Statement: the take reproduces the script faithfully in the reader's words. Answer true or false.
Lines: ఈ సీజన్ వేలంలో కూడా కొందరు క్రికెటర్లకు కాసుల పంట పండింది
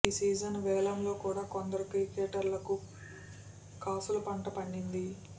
true